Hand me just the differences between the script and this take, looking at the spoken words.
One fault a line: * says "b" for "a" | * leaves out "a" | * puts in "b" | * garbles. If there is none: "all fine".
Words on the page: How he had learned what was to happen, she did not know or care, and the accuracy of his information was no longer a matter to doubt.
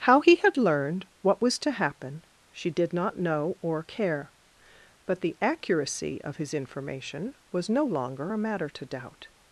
* says "but" for "and"